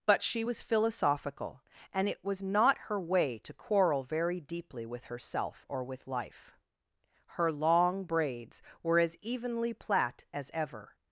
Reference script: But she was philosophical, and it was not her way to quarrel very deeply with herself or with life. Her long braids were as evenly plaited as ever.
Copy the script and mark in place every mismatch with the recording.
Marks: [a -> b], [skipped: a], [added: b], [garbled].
But she was philosophical, and it was not her way to quarrel very deeply with herself or with life. Her long braids were as evenly [plaited -> plait] as ever.